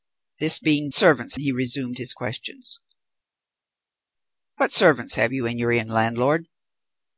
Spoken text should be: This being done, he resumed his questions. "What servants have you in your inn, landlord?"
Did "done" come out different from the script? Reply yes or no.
yes